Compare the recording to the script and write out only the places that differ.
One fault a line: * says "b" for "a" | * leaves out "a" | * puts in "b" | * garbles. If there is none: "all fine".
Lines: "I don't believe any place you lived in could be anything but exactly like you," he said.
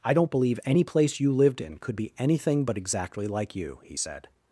all fine